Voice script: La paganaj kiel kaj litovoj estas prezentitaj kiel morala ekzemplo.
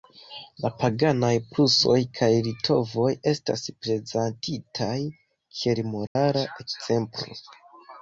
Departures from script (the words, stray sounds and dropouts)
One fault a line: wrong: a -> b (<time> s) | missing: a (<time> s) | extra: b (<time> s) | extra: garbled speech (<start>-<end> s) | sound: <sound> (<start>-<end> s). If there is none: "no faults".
wrong: kiel -> prusoj (1.5 s)
sound: dropout (6.1-6.2 s)